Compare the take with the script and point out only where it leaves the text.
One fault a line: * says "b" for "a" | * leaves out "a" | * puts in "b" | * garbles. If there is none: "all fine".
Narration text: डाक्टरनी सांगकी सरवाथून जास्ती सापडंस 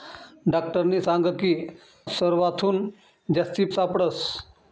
all fine